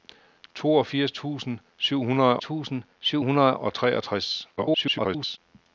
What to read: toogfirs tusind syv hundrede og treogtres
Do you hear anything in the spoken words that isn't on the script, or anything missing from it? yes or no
yes